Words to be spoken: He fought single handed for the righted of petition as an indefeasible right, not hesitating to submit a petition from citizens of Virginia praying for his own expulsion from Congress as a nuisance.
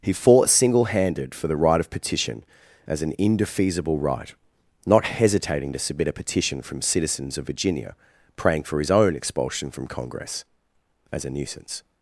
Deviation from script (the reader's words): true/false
true